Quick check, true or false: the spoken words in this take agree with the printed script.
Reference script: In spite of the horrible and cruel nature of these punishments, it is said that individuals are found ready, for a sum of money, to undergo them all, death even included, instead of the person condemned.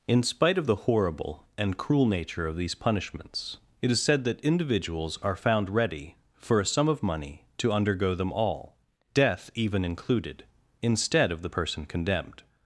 true